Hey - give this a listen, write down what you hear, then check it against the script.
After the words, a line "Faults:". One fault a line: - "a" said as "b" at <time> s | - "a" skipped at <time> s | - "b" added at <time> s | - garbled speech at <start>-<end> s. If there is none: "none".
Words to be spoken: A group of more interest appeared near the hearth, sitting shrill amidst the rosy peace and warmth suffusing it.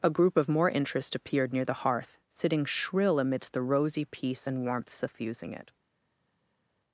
A group of more interest appeared near the hearth, sitting shrill amidst the rosy peace and warmth suffusing it.
Faults:
none